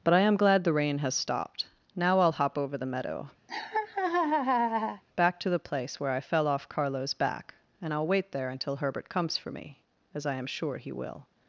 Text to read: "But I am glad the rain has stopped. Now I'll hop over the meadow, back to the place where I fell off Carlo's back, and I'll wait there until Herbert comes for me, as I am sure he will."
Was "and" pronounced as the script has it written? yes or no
yes